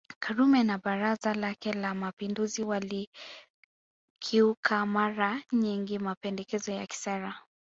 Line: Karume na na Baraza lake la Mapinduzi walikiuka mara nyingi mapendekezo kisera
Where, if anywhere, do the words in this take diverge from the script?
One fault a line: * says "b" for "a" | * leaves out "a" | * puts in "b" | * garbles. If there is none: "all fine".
* leaves out "na"
* puts in "ya"